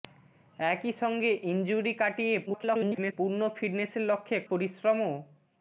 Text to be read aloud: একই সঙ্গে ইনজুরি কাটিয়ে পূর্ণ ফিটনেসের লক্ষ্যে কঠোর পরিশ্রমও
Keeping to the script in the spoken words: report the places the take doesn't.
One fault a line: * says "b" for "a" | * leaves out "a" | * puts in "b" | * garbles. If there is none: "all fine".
* garbles
* leaves out "কঠোর"